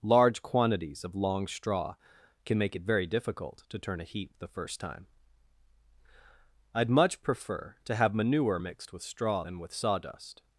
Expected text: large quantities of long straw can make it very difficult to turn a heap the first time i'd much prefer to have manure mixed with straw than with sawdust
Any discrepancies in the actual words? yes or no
no